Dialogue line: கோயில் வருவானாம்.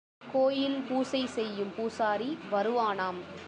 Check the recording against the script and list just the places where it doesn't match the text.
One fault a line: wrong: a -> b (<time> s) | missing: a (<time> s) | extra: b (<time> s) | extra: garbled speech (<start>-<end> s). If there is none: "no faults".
extra: பூசை செய்யும் பூசாரி (0.9 s)